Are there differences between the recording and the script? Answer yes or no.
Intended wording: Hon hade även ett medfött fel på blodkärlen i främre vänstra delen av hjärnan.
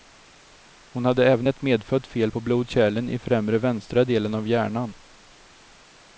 no